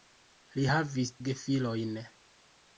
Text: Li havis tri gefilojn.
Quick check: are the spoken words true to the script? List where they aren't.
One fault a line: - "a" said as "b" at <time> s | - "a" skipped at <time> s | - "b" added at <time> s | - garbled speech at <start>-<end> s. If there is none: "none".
- "tri" skipped at 1.1 s